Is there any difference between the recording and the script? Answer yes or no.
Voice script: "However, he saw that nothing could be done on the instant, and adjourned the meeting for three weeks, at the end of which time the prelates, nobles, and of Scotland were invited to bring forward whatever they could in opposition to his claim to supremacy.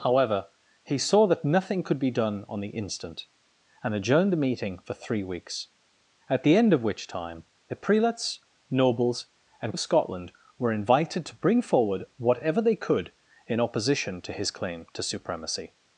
no